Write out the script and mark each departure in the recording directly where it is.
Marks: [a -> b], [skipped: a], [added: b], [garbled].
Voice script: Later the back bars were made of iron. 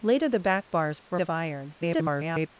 Later the back bars were [skipped: made] of iron. [garbled]